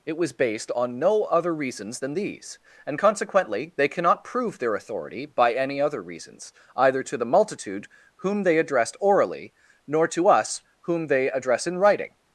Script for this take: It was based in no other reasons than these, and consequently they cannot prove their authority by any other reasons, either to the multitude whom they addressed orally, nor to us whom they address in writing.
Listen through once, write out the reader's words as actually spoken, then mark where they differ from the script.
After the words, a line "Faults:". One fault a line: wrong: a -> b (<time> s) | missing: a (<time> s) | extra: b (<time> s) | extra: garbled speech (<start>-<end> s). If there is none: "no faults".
It was based on no other reasons than these, and consequently they cannot prove their authority by any other reasons, either to the multitude whom they addressed orally, nor to us whom they address in writing.
Faults:
wrong: in -> on (0.7 s)